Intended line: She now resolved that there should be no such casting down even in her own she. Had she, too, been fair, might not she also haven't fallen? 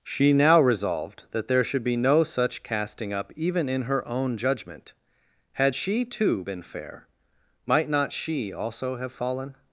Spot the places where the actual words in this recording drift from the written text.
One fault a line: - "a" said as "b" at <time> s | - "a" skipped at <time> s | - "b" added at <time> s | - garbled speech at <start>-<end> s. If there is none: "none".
- "down" said as "up" at 3.1 s
- "she" said as "judgment" at 4.4 s
- "haven't" said as "have" at 9.0 s